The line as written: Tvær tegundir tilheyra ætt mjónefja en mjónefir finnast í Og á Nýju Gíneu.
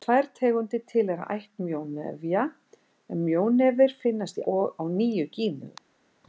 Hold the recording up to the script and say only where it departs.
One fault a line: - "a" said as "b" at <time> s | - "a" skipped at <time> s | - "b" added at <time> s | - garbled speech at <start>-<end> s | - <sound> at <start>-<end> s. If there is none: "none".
none